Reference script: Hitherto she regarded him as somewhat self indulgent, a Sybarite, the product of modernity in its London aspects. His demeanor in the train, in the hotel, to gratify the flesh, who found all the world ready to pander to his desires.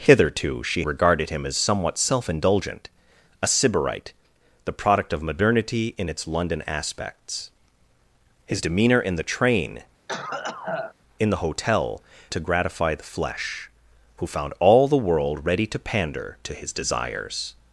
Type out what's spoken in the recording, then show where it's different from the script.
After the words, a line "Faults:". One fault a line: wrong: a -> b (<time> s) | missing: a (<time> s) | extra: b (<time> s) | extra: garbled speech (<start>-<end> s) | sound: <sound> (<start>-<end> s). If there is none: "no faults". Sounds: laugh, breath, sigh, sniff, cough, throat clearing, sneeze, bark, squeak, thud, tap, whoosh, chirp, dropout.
Hitherto she regarded him as somewhat self indulgent, a Sybarite, the product of modernity in its London aspects. His demeanor in the train, in the hotel, to gratify the flesh, who found all the world ready to pander to his desires.
Faults:
sound: cough (10.1-10.9 s)